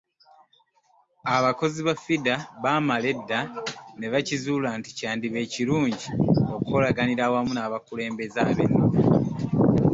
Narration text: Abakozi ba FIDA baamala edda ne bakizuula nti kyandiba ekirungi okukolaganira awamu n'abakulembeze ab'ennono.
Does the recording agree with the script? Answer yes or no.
yes